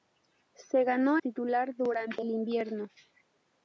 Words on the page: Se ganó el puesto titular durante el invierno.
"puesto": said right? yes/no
no